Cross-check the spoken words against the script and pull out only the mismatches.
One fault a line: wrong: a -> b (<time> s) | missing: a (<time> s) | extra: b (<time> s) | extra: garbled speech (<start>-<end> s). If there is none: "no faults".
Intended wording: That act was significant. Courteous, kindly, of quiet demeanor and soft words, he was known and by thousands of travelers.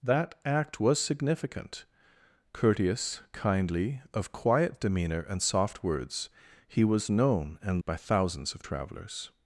no faults